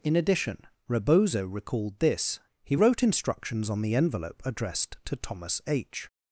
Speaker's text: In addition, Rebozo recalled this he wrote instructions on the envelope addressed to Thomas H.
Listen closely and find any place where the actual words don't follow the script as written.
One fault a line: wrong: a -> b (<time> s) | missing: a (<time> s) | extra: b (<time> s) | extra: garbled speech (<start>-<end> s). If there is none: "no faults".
no faults